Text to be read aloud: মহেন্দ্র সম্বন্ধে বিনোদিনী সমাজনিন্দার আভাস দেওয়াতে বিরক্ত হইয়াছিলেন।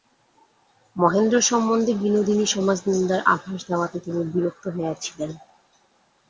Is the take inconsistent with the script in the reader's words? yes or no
yes